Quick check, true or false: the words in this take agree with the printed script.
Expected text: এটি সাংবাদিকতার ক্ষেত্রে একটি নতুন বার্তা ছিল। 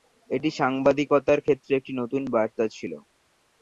true